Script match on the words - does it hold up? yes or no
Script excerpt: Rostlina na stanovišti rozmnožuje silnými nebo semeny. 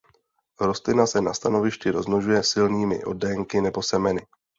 no